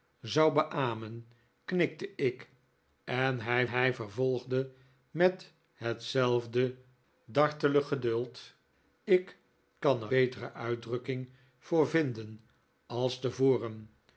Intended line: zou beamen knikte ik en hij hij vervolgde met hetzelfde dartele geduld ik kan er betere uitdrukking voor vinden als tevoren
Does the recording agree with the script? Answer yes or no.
yes